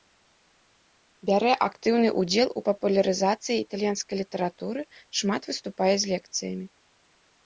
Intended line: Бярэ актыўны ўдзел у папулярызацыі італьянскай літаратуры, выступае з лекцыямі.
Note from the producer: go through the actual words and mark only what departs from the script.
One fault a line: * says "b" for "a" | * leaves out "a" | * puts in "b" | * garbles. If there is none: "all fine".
* puts in "шмат"